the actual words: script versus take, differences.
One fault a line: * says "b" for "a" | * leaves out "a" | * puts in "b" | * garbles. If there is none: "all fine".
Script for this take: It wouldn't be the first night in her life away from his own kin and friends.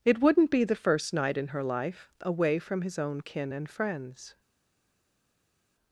all fine